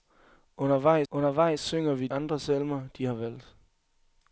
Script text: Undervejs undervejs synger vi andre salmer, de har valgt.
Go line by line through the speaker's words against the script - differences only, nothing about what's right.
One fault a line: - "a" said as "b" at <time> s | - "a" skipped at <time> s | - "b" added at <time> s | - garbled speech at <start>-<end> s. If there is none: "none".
none